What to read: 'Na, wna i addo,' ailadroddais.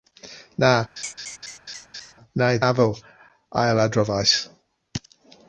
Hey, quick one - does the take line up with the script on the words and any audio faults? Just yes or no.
no